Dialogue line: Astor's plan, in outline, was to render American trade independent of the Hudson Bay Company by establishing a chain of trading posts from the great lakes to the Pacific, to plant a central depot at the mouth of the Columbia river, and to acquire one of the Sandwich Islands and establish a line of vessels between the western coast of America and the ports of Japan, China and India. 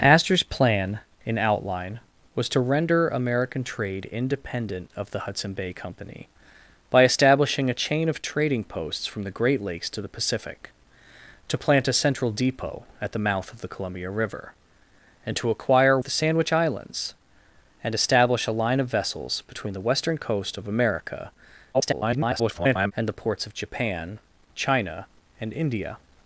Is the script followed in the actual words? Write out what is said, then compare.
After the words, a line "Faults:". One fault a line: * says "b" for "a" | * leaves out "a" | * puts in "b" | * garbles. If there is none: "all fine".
Astor's plan, in outline, was to render American trade independent of the Hudson Bay Company by establishing a chain of trading posts from the great lakes to the Pacific, to plant a central depot at the mouth of the Columbia river, and to acquire the Sandwich Islands and establish a line of vessels between the western coast of America [garbled] and the ports of Japan, China and India.
Faults:
* leaves out "one of"
* garbles